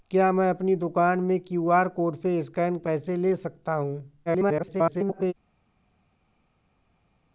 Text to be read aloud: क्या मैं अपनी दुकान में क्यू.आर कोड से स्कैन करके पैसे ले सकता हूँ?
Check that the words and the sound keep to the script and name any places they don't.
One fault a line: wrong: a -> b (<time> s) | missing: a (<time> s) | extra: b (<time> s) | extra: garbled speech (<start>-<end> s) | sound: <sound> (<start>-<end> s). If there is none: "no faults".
missing: करके (2.8 s)
extra: garbled speech (4.3-5.3 s)